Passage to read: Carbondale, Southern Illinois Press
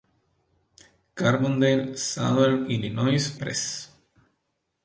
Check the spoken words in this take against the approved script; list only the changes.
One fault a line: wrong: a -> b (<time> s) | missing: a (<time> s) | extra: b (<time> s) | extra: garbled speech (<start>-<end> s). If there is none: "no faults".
no faults